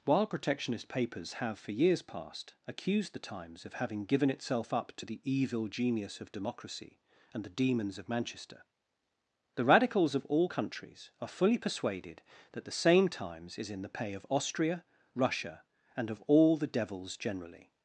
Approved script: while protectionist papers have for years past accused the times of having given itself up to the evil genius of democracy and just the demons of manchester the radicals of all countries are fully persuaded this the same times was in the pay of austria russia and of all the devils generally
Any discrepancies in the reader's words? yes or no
yes